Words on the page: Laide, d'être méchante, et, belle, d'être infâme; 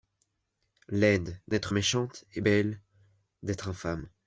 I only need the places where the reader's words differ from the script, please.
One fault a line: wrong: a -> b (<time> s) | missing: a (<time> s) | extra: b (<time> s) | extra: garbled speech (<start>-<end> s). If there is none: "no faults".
no faults